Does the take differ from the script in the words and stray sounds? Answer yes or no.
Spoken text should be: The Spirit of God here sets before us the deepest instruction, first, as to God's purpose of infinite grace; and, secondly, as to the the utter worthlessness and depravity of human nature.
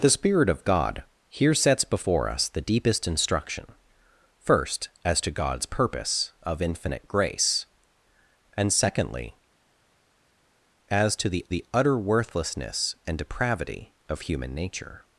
no